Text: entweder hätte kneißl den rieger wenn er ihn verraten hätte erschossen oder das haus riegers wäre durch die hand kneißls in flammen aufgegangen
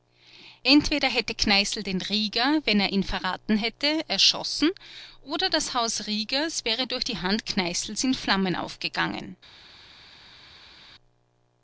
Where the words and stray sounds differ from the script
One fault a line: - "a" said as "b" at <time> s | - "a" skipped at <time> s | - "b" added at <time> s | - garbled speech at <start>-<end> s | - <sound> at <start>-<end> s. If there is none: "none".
none